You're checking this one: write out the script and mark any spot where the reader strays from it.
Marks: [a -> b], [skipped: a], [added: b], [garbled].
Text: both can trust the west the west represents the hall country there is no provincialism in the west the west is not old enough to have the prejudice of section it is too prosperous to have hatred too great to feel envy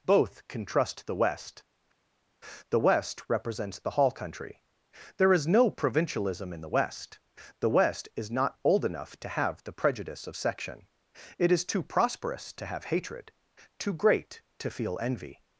both can trust the west the west represents the hall country there is no provincialism in the west the west is not old enough to have the prejudice of section it is too prosperous to have hatred too great to feel envy